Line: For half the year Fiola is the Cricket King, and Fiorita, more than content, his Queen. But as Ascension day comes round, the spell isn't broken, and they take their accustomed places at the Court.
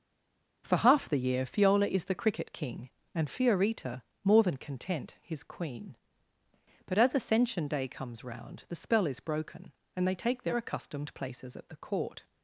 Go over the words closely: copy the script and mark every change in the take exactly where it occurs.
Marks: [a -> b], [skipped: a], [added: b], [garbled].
For half the year Fiola is the Cricket King, and Fiorita, more than content, his Queen. But as Ascension day comes round, the spell [isn't -> is] broken, and they take their accustomed places at the Court.